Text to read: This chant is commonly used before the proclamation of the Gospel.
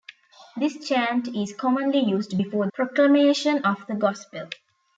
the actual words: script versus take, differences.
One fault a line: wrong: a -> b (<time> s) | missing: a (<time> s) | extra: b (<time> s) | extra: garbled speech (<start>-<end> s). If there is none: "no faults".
missing: the (2.7 s)